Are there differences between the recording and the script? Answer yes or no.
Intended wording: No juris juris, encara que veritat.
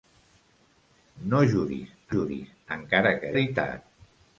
no